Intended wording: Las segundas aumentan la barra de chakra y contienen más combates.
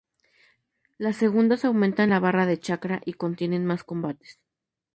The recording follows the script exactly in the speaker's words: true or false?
true